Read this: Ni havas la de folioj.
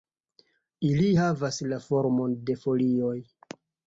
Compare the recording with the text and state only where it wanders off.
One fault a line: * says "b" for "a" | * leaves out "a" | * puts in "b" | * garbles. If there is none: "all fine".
* says "Ili" for "Ni"
* puts in "formon"